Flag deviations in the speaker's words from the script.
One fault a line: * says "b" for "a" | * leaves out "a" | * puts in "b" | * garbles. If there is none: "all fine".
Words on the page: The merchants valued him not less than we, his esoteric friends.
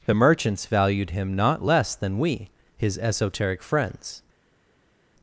all fine